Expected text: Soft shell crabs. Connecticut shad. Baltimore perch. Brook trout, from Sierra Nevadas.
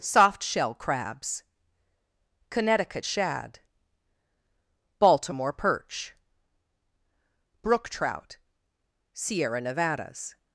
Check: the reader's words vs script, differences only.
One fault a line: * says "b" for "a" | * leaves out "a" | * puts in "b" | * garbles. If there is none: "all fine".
* leaves out "from"